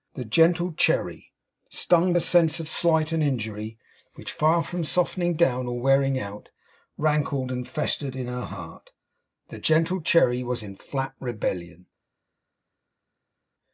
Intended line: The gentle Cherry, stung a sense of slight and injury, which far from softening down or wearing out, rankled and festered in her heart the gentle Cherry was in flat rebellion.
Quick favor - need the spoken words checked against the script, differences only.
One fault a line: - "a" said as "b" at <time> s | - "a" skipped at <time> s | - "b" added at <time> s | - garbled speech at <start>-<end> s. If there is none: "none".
none